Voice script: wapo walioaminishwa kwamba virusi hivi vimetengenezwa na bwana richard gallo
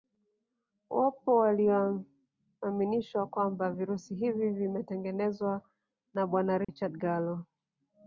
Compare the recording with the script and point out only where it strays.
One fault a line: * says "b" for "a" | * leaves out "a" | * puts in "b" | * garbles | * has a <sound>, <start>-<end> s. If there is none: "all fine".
* has a dropout, 6.6-6.7 s